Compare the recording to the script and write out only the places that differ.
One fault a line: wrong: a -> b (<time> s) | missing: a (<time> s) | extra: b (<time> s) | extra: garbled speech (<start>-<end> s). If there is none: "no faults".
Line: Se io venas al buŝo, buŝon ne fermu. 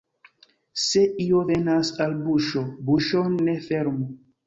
no faults